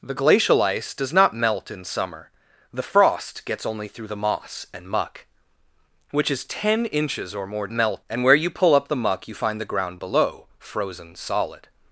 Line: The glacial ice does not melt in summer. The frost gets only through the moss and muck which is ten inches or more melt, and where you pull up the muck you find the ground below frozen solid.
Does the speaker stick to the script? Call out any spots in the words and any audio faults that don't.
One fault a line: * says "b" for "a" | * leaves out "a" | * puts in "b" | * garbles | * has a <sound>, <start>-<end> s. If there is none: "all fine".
all fine